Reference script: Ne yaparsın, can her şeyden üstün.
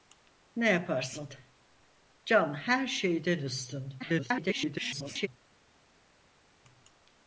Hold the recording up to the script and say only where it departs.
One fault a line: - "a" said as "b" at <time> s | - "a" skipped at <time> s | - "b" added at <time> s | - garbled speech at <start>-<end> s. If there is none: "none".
- garbled speech at 4.0-5.3 s